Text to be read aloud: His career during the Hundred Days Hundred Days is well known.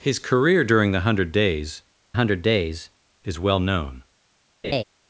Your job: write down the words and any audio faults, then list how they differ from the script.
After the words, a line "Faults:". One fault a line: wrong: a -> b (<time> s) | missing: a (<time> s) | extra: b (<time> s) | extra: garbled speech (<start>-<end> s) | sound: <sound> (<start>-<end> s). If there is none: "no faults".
His career during the Hundred Days Hundred Days is well known.
Faults:
sound: laugh (4.6-4.8 s)